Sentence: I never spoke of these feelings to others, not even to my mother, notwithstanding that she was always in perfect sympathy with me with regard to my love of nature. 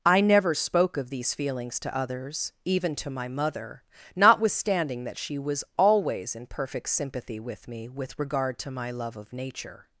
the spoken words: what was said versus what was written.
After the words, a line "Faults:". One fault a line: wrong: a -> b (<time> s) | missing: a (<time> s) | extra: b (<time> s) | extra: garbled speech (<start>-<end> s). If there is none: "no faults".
I never spoke of these feelings to others, even to my mother, notwithstanding that she was always in perfect sympathy with me with regard to my love of nature.
Faults:
missing: not (2.5 s)